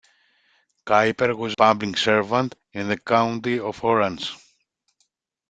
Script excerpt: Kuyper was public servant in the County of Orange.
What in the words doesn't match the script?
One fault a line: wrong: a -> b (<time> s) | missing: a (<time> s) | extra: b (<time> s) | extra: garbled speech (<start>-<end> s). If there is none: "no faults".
no faults